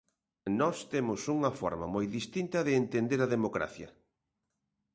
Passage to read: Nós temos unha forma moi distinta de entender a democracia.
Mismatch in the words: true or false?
false